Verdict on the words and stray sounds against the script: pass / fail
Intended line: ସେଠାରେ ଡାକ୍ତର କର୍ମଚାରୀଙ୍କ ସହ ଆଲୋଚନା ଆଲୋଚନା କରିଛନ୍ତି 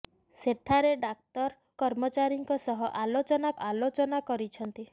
pass